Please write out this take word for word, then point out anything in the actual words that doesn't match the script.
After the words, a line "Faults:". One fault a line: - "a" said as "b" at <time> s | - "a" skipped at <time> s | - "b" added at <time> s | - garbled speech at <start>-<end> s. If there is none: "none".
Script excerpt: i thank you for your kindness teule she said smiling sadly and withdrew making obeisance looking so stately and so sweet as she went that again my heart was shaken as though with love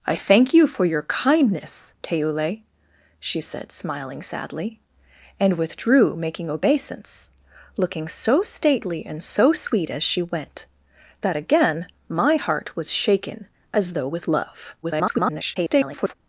i thank you for your kindness teule she said smiling sadly and withdrew making obeisance looking so stately and so sweet as she went that again my heart was shaken as though with love [garbled]
Faults:
- garbled speech at 14.8-16.1 s